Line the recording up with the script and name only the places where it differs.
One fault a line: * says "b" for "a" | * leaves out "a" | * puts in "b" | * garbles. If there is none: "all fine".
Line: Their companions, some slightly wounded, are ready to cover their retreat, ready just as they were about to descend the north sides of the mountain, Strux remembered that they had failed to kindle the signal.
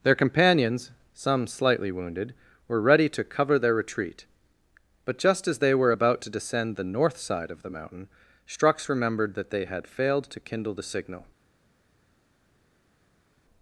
* says "were" for "are"
* says "but" for "ready"
* says "side" for "sides"